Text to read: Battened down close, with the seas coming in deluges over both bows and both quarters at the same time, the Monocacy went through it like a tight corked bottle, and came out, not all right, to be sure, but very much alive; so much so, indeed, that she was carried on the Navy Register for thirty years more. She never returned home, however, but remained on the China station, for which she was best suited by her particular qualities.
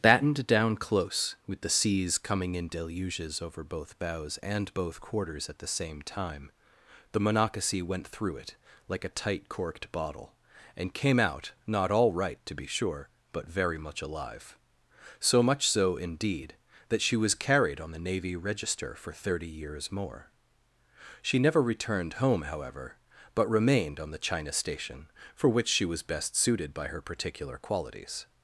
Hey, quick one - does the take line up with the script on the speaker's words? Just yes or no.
yes